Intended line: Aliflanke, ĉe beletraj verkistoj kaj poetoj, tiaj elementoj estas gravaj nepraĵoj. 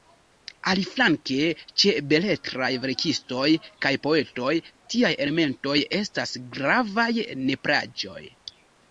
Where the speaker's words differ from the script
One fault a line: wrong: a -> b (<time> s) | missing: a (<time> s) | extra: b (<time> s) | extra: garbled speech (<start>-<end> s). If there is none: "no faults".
no faults